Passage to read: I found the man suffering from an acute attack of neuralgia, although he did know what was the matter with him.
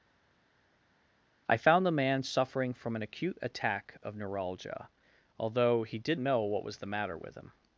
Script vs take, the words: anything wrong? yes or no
no